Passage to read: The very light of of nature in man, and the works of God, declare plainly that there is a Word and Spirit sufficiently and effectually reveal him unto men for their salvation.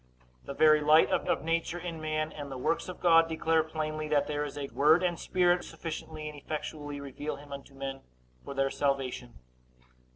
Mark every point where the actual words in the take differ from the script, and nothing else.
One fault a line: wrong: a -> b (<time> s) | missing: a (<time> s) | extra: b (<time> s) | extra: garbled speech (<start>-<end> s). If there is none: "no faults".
no faults